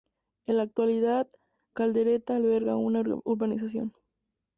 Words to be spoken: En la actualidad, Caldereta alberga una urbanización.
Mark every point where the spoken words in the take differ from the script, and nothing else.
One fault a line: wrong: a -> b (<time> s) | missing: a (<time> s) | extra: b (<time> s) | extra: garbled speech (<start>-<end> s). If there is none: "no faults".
no faults